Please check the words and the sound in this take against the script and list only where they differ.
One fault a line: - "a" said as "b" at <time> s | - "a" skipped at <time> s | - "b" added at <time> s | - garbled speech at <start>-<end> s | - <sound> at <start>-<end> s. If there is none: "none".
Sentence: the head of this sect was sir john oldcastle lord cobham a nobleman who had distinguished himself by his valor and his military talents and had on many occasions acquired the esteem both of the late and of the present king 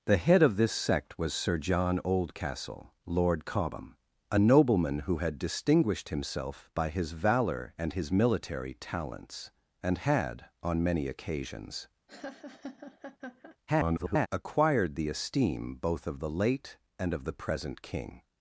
- laugh at 12.1-13.6 s
- garbled speech at 13.7-14.3 s